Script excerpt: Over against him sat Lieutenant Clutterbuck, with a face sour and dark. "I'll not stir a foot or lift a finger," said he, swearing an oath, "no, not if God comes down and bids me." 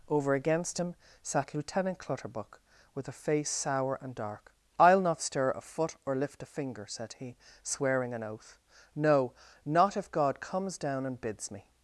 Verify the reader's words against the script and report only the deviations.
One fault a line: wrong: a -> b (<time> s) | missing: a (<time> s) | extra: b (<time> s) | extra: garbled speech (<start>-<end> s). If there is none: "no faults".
no faults